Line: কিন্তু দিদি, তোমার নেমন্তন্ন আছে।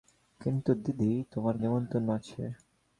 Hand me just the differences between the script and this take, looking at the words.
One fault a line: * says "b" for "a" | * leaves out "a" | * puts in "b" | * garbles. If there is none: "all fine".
all fine